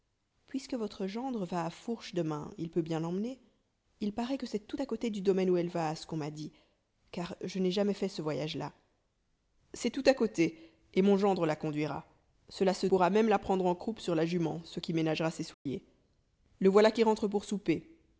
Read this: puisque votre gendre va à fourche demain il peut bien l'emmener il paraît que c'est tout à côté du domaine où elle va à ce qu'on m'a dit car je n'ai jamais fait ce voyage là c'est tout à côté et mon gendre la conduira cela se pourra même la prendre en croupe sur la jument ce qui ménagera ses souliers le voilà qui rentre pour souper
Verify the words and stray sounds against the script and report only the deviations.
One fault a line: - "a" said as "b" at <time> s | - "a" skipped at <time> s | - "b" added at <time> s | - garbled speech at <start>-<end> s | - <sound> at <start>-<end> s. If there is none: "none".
- dropout at 15.5-15.7 s